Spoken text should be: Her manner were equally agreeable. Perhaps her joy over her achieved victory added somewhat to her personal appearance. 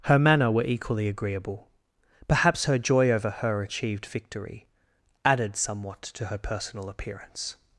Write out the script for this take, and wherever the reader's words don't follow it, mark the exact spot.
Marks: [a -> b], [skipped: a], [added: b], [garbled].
Her manner were equally agreeable. Perhaps her joy over her achieved victory added somewhat to her personal appearance.